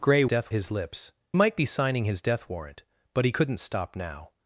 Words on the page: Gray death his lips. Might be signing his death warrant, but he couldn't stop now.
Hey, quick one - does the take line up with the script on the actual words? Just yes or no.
yes